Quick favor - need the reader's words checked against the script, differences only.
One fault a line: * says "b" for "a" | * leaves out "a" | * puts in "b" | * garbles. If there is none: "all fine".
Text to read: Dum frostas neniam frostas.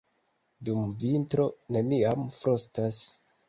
* says "vintro" for "frostas"